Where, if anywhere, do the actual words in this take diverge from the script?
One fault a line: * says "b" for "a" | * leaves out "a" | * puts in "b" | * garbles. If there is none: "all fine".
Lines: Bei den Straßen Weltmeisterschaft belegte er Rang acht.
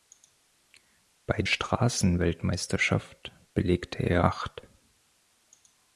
* leaves out "den"
* leaves out "Rang"